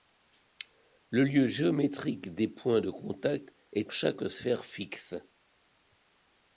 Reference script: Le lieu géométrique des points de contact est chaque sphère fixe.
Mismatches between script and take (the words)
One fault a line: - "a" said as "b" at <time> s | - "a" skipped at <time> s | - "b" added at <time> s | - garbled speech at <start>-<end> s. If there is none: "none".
none